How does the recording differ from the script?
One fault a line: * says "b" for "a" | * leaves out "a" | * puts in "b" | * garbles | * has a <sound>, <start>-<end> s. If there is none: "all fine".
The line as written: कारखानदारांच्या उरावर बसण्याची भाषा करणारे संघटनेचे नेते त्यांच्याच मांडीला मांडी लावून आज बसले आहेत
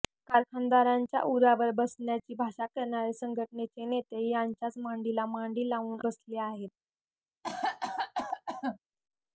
* leaves out "आज"
* has a cough, 7.4-8.8 s